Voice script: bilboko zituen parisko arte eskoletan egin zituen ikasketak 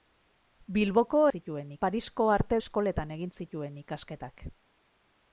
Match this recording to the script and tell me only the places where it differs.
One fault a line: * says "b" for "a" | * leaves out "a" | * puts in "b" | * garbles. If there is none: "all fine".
all fine